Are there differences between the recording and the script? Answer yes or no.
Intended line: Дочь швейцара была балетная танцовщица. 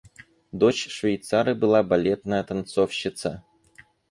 no